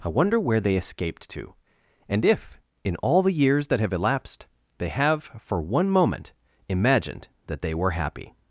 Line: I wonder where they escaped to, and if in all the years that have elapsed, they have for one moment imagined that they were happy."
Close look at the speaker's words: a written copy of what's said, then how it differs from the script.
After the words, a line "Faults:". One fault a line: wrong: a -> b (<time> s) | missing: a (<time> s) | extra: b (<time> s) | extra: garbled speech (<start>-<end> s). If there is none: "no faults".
I wonder where they escaped to, and if in all the years that have elapsed, they have for one moment imagined that they were happy."
Faults:
no faults